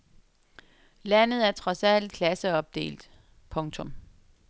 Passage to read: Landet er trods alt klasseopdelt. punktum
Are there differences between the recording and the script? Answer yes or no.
no